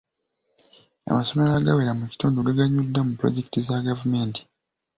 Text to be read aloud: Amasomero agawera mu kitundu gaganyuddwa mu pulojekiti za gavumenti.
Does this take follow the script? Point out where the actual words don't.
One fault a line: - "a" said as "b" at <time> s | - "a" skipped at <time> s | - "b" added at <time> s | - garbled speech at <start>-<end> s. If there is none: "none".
none